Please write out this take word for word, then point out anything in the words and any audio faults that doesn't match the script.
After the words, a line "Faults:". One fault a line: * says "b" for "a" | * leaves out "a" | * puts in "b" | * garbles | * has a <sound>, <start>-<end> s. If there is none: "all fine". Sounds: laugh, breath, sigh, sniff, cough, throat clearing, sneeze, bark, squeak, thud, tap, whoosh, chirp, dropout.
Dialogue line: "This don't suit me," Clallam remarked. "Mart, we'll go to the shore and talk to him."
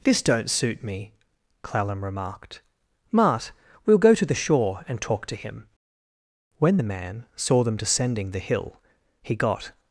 "This don't suit me," Clallam remarked. "Mart, we'll go to the shore and talk to him." When the man saw them descending the hill, he got
Faults:
* puts in "When the man saw them descending the hill he got"